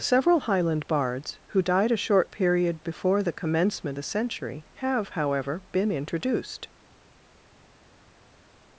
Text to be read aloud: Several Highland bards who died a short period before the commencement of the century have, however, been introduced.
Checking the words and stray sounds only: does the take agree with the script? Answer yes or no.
no